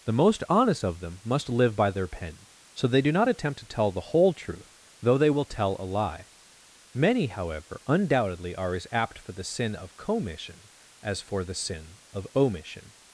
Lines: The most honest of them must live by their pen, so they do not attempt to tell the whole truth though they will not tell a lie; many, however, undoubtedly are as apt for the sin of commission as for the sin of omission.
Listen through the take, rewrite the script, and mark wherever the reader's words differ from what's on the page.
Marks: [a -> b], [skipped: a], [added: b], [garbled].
The most honest of them must live by their pen, so they do not attempt to tell the whole truth though they will [skipped: not] tell a lie; many, however, undoubtedly are as apt for the sin of commission as for the sin of omission.